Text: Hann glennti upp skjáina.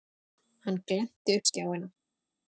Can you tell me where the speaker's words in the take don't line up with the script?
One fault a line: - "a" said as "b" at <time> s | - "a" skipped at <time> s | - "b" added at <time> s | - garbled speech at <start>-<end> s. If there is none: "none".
none